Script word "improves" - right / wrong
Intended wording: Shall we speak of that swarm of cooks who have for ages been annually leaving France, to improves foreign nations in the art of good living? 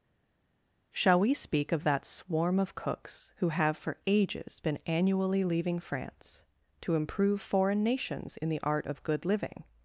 wrong